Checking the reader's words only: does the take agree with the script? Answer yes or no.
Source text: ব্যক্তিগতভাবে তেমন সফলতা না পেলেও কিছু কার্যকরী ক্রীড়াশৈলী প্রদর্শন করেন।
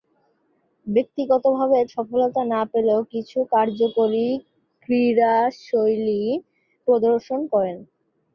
no